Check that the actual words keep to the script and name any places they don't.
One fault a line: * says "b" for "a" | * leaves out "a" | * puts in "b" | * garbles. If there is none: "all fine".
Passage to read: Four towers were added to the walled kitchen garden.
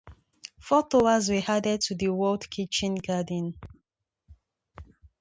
all fine